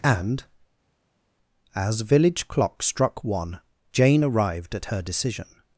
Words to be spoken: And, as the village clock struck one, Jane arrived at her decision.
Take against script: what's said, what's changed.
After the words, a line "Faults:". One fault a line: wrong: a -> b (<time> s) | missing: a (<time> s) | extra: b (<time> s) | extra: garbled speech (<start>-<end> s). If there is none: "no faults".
And, as village clock struck one, Jane arrived at her decision.
Faults:
missing: the (2.0 s)